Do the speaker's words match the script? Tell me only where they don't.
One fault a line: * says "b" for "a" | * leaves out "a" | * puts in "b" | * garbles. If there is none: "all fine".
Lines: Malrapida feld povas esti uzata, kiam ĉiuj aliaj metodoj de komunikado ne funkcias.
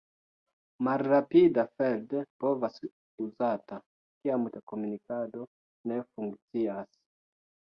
* leaves out "esti"
* leaves out "ĉiuj aliaj metodoj"